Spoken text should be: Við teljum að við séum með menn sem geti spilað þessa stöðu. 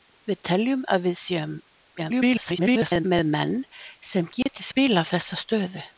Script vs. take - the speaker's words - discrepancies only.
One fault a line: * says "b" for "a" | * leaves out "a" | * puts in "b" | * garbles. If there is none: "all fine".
* garbles